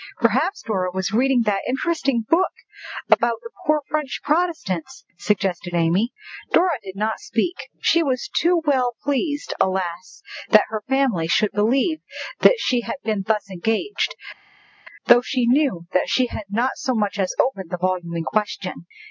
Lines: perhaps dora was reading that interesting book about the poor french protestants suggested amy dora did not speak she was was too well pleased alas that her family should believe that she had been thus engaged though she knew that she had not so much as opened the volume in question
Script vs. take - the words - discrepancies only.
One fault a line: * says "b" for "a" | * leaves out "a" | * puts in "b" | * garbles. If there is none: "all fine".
* leaves out "was"